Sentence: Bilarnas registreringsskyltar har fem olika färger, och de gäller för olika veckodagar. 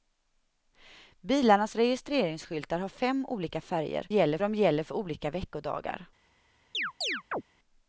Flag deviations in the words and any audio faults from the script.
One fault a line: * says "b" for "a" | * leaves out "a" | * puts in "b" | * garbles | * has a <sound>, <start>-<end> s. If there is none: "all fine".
* says "gäller" for "och"
* has a chirp, 6.7-7.4 s